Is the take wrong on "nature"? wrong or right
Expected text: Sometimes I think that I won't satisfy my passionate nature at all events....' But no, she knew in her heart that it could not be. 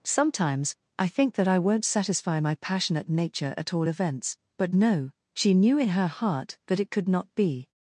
right